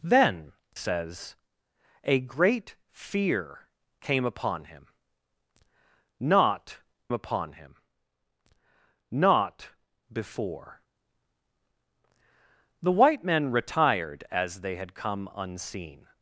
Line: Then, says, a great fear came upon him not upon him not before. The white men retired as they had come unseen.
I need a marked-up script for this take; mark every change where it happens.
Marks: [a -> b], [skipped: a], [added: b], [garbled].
Then, says, a great fear came upon him not upon him not before. The white men retired as they had come unseen.